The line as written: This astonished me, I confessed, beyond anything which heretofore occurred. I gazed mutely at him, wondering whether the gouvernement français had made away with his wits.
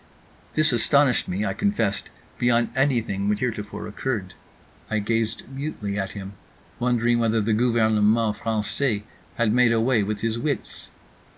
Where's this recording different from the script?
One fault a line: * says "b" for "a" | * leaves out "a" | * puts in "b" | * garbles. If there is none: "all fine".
all fine